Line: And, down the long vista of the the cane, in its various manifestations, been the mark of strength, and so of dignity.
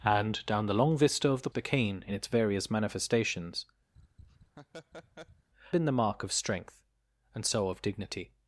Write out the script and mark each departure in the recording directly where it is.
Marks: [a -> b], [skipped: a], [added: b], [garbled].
And, down the long vista of the the cane, in its various manifestations, been the mark of strength, and so of dignity.